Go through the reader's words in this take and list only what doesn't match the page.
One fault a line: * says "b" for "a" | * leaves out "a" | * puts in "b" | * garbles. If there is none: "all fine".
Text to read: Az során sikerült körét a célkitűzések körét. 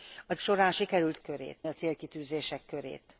all fine